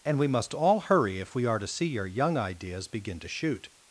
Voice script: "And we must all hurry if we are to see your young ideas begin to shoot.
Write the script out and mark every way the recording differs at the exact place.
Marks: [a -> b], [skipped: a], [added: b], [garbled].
"And we must all hurry if we are to see your young ideas begin to shoot.